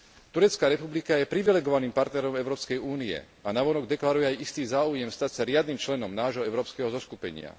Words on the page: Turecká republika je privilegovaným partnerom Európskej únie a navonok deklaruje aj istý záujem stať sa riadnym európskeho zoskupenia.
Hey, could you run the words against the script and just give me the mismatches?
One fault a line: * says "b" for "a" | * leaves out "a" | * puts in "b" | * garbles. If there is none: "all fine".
* puts in "členom nášho"